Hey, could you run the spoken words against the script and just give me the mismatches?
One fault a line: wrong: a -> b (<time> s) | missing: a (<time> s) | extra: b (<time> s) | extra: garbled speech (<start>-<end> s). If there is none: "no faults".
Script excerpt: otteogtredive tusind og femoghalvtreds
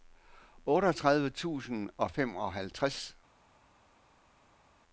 no faults